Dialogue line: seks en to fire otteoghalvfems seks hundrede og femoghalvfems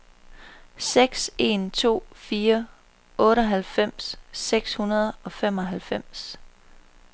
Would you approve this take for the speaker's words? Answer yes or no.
yes